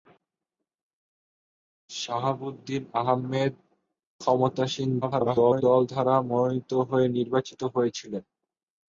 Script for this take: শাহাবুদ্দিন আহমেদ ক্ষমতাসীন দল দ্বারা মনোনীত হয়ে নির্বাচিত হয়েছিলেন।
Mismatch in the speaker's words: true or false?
true